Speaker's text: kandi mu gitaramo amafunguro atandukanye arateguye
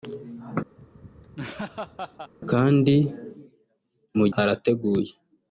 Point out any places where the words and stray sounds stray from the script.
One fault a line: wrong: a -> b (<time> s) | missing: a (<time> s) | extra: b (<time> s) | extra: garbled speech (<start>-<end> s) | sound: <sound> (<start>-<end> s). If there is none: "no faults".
sound: laugh (0.8-2.3 s)
missing: gitaramo amafunguro atandukanye (4.3 s)